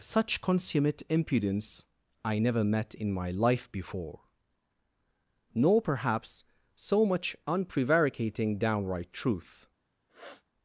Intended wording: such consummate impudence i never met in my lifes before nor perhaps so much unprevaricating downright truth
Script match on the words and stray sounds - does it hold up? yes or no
no